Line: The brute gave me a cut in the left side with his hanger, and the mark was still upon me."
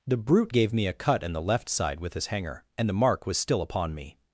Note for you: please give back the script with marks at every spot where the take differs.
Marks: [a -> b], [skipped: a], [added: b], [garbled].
The brute gave me a cut in the left side with his hanger, and the mark was still upon me."